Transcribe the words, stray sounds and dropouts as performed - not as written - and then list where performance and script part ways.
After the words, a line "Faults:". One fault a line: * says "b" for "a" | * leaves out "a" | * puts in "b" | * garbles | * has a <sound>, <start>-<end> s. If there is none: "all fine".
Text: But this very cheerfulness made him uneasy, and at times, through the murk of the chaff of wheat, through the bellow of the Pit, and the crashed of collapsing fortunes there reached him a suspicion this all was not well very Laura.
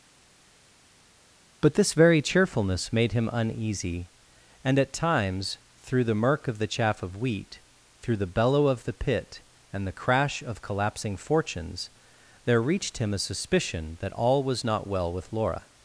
But this very cheerfulness made him uneasy, and at times, through the murk of the chaff of wheat, through the bellow of the Pit, and the crash of collapsing fortunes there reached him a suspicion that all was not well with Laura.
Faults:
* says "crash" for "crashed"
* says "that" for "this"
* says "with" for "very"